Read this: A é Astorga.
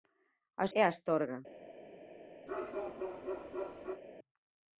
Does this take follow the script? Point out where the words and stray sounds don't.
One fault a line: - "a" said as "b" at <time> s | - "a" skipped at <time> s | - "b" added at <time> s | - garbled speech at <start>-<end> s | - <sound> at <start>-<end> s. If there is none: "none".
- bark at 2.5-4.0 s